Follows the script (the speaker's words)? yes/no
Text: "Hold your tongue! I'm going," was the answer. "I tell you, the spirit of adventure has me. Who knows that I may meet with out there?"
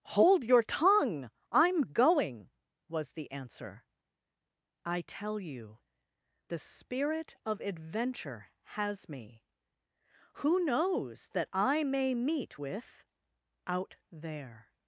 yes